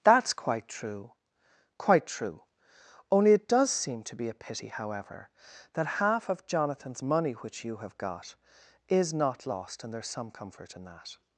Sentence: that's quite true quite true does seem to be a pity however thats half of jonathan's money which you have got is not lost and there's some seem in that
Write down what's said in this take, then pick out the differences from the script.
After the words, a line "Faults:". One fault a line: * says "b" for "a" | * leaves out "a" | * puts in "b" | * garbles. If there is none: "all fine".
that's quite true quite true only it does seem to be a pity however that half of jonathan's money which you have got is not lost and there's some comfort in that
Faults:
* puts in "only it"
* says "that" for "thats"
* says "comfort" for "seem"